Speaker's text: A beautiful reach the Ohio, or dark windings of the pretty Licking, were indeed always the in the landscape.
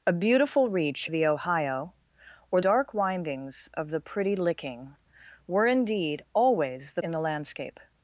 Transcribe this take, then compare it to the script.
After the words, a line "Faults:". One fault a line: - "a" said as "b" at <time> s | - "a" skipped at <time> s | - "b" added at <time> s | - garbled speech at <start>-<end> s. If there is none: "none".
A beautiful reach the Ohio, or dark windings of the pretty Licking, were indeed always the in the landscape.
Faults:
none